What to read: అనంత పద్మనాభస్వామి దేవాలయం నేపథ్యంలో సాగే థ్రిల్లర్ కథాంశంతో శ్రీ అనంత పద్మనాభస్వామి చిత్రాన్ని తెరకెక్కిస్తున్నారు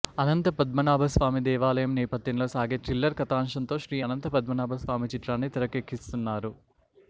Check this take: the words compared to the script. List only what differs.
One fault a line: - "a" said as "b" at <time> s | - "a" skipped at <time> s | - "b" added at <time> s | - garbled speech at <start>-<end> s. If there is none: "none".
none